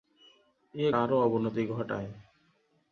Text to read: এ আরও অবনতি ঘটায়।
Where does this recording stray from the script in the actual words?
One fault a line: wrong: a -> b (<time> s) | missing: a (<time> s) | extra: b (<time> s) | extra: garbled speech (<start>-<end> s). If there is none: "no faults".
no faults